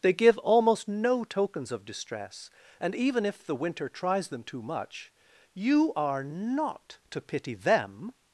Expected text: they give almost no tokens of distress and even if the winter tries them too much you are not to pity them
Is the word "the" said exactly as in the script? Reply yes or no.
yes